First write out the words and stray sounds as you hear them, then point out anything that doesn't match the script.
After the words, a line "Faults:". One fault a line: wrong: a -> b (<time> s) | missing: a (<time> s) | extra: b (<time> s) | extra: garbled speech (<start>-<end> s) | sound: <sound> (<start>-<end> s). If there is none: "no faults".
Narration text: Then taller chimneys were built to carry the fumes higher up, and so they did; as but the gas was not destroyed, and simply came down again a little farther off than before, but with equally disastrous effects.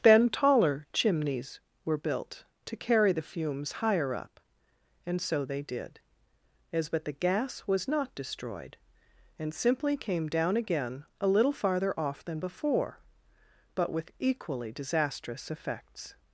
Then taller chimneys were built to carry the fumes higher up, and so they did; as but the gas was not destroyed, and simply came down again a little farther off than before, but with equally disastrous effects.
Faults:
no faults